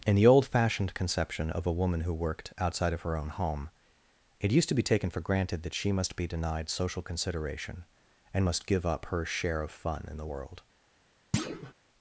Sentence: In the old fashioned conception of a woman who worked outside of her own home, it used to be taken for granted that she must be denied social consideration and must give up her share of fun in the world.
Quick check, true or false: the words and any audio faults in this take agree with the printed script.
false